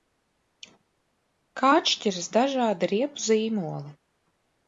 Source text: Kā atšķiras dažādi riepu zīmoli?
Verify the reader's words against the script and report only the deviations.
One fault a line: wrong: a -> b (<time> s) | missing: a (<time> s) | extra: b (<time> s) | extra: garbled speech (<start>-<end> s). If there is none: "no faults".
no faults